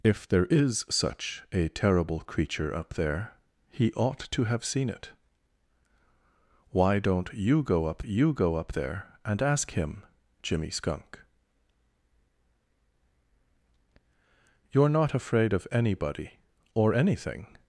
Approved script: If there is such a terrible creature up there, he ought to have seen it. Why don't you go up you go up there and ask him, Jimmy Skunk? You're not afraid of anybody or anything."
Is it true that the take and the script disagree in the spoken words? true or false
false